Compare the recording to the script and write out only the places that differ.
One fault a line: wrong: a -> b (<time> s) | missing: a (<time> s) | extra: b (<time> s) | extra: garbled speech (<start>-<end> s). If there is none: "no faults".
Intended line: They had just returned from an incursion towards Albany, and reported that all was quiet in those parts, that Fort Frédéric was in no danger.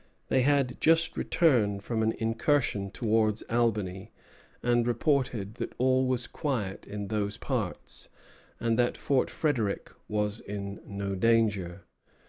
extra: and (8.6 s)